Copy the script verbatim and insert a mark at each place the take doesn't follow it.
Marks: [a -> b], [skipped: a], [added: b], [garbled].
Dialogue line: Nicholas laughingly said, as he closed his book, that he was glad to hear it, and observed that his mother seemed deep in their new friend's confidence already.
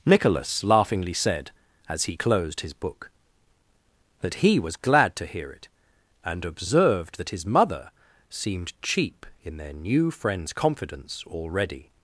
Nicholas laughingly said, as he closed his book, that he was glad to hear it, and observed that his mother seemed [deep -> cheap] in their new friend's confidence already.